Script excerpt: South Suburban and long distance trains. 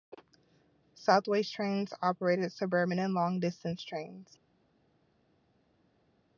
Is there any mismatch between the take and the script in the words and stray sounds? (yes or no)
yes